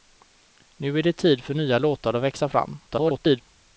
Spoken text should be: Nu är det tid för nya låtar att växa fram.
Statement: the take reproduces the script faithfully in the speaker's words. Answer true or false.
false